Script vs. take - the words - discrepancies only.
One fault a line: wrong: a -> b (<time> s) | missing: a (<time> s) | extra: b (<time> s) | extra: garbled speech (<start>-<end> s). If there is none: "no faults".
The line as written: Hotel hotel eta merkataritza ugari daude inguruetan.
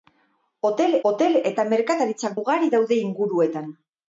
no faults